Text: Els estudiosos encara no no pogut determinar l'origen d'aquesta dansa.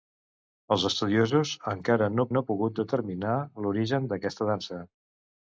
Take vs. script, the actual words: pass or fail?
pass